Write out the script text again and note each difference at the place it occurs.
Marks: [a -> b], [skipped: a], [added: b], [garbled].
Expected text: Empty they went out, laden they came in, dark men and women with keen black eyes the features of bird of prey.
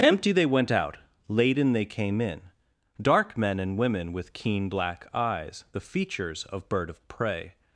Empty they went out, laden they came in, dark men and women with keen black eyes the features of bird of prey.